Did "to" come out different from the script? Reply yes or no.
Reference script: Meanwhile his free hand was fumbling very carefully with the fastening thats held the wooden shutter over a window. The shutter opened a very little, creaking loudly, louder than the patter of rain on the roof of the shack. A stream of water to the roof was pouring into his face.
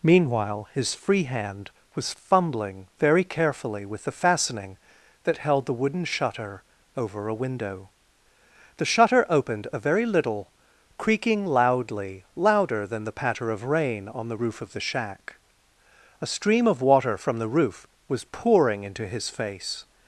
yes